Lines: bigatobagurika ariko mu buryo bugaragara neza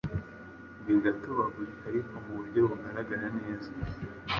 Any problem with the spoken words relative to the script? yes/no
no